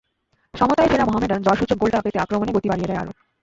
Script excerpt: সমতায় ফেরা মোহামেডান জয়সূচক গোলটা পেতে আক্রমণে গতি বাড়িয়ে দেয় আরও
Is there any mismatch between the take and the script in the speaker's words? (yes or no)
no